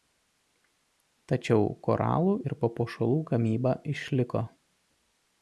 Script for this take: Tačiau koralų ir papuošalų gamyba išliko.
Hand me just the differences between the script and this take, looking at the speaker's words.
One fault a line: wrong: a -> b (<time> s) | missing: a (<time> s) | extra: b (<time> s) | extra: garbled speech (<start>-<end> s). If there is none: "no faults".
no faults